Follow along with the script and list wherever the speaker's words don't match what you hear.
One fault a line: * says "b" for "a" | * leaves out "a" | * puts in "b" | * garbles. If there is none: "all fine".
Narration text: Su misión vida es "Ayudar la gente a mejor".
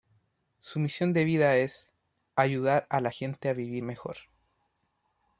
* puts in "de"
* puts in "a"
* puts in "vivir"